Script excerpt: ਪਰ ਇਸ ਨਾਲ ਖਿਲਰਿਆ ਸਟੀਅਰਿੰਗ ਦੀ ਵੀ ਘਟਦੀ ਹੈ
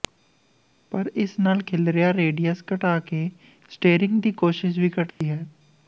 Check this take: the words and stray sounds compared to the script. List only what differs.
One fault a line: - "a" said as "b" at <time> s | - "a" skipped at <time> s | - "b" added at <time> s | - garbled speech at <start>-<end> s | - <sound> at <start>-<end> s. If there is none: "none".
- "ਰੇਡੀਅਸ ਘਟਾ ਕੇ" added at 2.1 s
- "ਕੋਸ਼ਿਸ਼" added at 4.3 s
- dropout at 5.1-5.2 s